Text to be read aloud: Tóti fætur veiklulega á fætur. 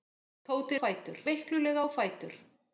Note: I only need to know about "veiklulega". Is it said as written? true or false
true